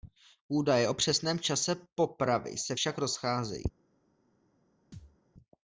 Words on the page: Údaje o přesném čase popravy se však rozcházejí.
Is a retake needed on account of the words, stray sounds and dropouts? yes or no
yes